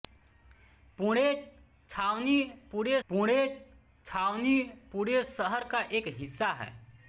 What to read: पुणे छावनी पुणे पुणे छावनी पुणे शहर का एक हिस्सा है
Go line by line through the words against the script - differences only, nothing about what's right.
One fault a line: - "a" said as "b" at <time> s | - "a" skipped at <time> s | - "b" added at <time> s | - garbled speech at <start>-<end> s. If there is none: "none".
none